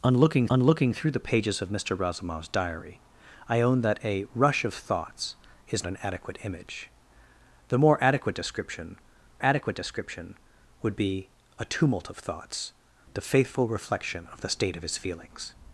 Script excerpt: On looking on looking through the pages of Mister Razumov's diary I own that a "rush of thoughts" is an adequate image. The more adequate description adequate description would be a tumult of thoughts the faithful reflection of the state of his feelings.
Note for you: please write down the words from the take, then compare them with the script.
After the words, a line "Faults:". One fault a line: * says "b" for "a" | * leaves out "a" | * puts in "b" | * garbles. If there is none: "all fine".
On looking on looking through the pages of Mister Razumov's diary I own that a "rush of thoughts" is an adequate image. The more adequate description adequate description would be a tumult of thoughts the faithful reflection of the state of his feelings.
Faults:
all fine